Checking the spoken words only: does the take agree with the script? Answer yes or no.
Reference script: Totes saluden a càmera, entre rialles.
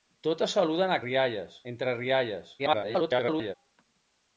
no